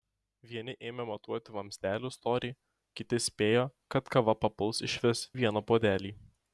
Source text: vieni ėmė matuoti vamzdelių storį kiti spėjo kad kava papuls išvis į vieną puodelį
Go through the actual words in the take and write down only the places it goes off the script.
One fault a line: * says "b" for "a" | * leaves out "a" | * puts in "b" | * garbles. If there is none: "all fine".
all fine